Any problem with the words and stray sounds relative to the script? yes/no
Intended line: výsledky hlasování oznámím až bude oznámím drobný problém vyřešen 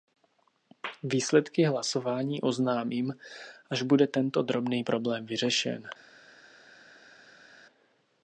yes